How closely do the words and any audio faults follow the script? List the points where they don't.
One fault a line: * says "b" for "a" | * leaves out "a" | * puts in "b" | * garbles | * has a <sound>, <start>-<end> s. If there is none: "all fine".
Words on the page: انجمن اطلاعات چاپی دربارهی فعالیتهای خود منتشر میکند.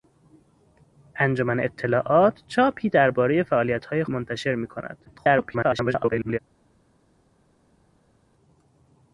* leaves out "خود"
* garbles